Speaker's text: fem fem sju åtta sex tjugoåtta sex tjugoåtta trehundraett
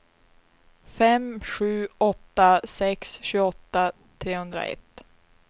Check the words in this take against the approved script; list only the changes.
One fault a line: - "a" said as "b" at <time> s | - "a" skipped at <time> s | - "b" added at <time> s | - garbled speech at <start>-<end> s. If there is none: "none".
- "fem" skipped at 1.4 s
- "sex tjugoåtta" skipped at 3.9 s